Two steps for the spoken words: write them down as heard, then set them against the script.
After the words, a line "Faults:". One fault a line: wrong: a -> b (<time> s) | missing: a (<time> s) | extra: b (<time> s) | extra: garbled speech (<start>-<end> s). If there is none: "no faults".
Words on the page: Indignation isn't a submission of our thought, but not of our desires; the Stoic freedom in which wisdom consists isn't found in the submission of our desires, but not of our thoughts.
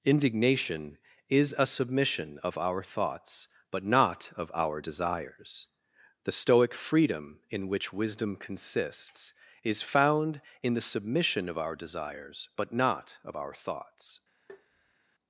Indignation is a submission of our thoughts, but not of our desires; the Stoic freedom in which wisdom consists is found in the submission of our desires, but not of our thoughts.
Faults:
wrong: isn't -> is (1.3 s)
wrong: thought -> thoughts (2.8 s)
wrong: isn't -> is (9.6 s)